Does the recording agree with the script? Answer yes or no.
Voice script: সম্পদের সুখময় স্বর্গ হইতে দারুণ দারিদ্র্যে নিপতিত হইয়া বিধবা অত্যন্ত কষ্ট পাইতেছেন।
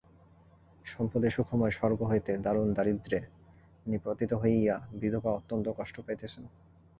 yes